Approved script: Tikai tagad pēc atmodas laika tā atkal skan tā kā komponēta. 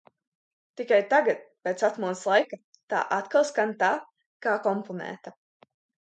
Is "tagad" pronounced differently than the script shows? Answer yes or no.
no